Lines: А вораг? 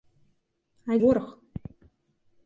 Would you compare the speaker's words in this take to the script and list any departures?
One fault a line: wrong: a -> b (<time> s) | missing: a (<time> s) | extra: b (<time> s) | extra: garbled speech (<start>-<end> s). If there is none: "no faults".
no faults